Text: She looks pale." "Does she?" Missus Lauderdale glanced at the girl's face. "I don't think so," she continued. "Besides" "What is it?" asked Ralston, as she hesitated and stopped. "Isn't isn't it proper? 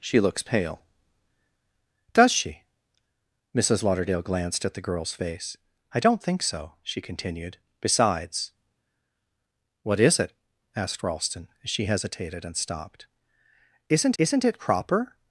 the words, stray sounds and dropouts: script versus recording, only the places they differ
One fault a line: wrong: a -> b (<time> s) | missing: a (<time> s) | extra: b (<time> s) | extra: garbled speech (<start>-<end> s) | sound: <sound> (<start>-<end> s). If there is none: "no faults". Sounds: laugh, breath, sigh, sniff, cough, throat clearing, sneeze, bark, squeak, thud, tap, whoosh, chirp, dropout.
no faults